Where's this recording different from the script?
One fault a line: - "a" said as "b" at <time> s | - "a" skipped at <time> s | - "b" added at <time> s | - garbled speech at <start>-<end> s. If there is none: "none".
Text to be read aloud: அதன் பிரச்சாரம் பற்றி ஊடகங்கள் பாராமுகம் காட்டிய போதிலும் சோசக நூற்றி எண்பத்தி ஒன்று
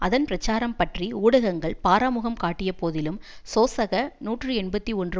none